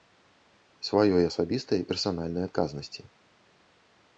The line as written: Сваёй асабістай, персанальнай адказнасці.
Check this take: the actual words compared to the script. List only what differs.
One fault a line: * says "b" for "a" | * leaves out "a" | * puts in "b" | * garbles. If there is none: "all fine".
all fine